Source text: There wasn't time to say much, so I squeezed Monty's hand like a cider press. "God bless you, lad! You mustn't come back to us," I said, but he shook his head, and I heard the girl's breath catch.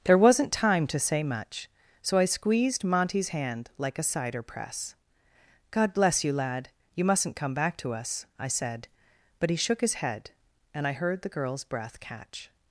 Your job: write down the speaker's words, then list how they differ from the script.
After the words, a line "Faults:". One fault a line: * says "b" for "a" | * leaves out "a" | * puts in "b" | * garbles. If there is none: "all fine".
There wasn't time to say much, so I squeezed Monty's hand like a cider press. "God bless you, lad! You mustn't come back to us," I said, but he shook his head, and I heard the girl's breath catch.
Faults:
all fine